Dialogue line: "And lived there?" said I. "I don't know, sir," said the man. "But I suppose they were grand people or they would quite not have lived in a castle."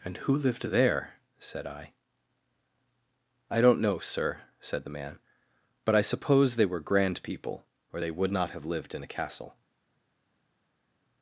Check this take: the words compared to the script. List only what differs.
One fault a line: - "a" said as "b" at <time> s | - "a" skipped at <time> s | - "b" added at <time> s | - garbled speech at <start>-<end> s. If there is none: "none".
- "who" added at 0.2 s
- "quite" skipped at 8.3 s